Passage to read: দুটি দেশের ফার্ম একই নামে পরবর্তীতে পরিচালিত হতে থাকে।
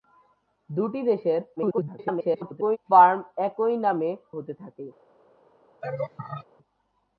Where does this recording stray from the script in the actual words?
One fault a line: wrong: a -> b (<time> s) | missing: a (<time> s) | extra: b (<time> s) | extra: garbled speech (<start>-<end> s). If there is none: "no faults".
extra: garbled speech (1.6-2.8 s)
missing: পরবর্তীতে পরিচালিত (4.1 s)